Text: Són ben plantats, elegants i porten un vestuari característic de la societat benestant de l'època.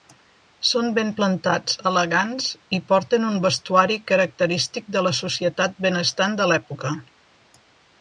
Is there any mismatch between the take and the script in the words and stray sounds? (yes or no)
no